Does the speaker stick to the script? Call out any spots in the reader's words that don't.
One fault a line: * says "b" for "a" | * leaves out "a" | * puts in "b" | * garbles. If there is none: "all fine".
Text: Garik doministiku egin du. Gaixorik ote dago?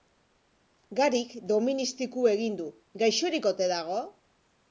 all fine